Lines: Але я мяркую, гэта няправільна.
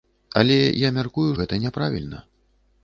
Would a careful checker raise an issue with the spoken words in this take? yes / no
no